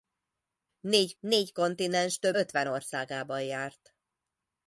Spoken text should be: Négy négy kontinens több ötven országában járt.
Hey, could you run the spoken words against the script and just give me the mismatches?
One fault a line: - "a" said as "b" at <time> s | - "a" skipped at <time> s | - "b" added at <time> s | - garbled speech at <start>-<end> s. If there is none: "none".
none